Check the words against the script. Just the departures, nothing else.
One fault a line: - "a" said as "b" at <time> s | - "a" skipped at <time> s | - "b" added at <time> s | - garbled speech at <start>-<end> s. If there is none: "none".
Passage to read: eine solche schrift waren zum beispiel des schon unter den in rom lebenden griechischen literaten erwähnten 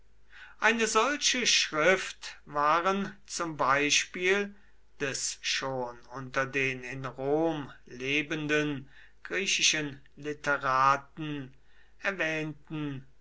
none